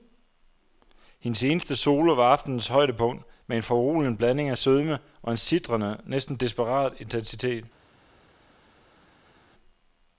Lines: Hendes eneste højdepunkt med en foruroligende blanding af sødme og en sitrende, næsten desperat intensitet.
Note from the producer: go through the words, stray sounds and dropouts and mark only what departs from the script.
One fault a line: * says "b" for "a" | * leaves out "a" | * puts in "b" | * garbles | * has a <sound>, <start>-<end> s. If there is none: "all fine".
* puts in "solo var aftenens"